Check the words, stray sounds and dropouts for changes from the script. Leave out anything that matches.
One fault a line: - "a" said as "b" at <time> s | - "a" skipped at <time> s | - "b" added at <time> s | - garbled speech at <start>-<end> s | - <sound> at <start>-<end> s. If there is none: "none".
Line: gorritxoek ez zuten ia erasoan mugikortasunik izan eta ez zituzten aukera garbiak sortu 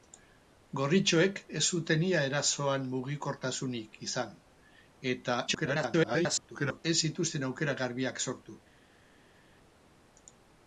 - garbled speech at 5.5-6.8 s